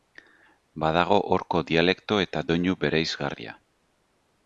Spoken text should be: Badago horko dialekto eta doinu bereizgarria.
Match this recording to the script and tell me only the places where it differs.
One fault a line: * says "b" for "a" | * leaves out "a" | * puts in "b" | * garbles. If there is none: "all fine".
all fine